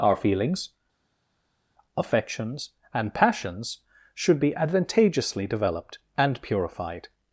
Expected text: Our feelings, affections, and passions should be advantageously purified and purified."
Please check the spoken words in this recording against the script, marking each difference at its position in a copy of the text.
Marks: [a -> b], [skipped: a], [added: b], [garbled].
Our feelings, affections, and passions should be advantageously [purified -> developed] and purified."